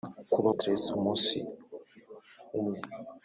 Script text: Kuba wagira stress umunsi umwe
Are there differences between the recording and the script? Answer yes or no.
yes